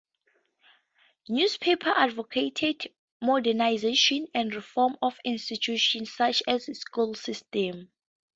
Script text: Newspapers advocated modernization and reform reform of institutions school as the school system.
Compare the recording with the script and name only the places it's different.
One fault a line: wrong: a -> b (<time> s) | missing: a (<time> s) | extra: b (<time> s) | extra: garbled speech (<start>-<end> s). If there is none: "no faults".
missing: reform (5.0 s)
wrong: school -> such (6.1 s)